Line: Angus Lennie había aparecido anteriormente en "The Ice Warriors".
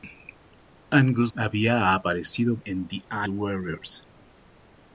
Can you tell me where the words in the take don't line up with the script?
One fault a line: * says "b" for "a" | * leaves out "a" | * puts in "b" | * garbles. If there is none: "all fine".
* leaves out "Lennie"
* leaves out "anteriormente"
* leaves out "Ice"